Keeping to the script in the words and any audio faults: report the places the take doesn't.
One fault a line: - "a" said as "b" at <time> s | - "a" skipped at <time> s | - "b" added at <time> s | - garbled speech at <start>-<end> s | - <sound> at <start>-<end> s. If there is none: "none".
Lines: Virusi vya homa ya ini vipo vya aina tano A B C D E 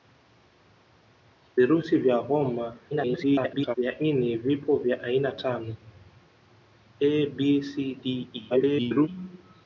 - garbled speech at 2.9-3.8 s
- garbled speech at 8.5-9.1 s